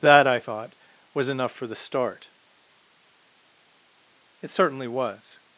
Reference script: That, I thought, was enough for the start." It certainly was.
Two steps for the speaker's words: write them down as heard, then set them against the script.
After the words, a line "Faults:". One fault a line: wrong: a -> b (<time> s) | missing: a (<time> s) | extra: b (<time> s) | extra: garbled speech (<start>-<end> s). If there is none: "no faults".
That, I thought, was enough for the start." It certainly was.
Faults:
no faults